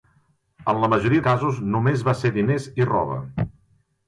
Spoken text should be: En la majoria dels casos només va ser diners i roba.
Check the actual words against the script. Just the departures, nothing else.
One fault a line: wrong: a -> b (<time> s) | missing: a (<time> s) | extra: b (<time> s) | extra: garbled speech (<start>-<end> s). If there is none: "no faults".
missing: dels (1.2 s)